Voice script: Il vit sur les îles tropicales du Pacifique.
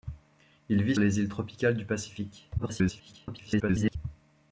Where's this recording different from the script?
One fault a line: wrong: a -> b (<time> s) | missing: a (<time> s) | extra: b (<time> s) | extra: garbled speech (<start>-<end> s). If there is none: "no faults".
missing: sur (0.9 s)
extra: garbled speech (2.6-4.0 s)